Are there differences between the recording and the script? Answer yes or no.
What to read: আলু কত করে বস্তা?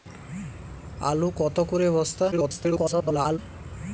yes